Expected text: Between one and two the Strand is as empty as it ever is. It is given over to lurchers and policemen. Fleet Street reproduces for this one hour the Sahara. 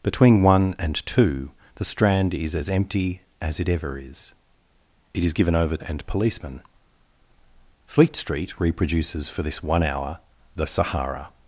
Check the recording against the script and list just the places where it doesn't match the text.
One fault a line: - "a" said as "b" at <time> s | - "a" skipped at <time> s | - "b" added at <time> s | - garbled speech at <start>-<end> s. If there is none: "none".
- "to lurchers" skipped at 5.8 s